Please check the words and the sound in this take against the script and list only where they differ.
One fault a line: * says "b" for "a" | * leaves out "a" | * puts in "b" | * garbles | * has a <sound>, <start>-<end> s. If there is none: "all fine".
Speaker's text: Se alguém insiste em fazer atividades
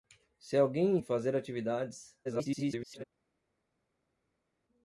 * leaves out "insiste"
* garbles